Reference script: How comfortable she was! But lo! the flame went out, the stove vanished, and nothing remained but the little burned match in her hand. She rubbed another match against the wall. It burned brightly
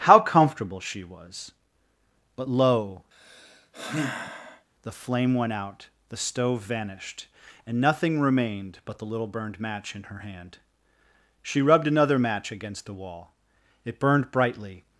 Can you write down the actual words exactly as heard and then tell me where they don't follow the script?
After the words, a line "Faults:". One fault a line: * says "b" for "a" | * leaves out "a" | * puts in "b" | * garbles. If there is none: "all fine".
How comfortable she was! But lo! the flame went out, the stove vanished, and nothing remained but the little burned match in her hand. She rubbed another match against the wall. It burned brightly
Faults:
all fine